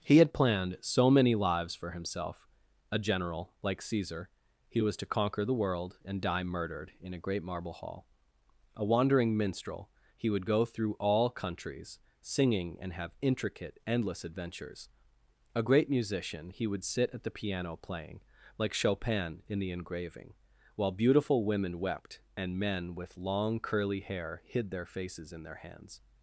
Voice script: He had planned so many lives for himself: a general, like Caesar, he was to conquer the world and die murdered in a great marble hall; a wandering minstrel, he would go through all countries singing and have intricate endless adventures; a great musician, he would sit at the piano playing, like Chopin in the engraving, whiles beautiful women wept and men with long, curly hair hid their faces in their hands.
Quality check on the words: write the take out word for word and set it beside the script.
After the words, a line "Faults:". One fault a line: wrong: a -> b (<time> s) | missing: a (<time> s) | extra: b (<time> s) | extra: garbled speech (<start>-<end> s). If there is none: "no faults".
He had planned so many lives for himself: a general, like Caesar, he was to conquer the world and die murdered in a great marble hall; a wandering minstrel, he would go through all countries singing and have intricate endless adventures; a great musician, he would sit at the piano playing, like Chopin in the engraving, while beautiful women wept and men with long, curly hair hid their faces in their hands.
Faults:
wrong: whiles -> while (20.8 s)